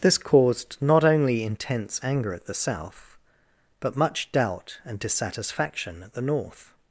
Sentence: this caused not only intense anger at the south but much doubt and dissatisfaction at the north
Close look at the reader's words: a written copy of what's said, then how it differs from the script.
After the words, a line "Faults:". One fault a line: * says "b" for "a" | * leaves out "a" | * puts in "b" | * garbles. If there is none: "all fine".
this caused not only intense anger at the south but much doubt and dissatisfaction at the north
Faults:
all fine